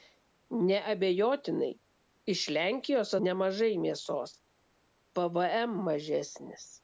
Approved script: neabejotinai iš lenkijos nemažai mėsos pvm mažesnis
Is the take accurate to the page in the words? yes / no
yes